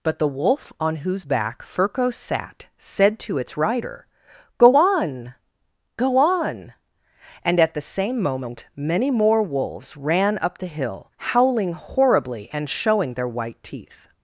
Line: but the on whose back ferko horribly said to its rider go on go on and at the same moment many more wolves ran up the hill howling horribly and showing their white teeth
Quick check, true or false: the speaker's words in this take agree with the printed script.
false